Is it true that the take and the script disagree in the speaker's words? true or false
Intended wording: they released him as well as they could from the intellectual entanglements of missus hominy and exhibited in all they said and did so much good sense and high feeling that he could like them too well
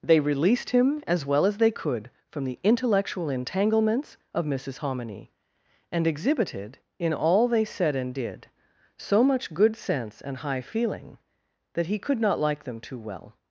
true